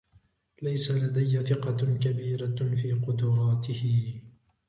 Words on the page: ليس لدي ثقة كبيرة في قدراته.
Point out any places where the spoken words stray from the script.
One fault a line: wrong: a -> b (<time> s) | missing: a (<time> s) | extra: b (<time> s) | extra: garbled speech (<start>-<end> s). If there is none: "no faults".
no faults